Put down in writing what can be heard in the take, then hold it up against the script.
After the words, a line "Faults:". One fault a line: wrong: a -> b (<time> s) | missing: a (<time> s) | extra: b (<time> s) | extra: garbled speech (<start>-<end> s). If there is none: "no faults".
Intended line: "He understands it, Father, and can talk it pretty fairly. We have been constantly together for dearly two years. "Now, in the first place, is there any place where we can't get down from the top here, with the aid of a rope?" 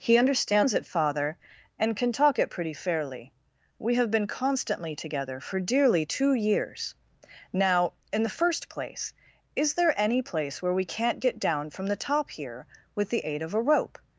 "He understands it, Father, and can talk it pretty fairly. We have been constantly together for dearly two years. "Now, in the first place, is there any place where we can't get down from the top here, with the aid of a rope?"
Faults:
no faults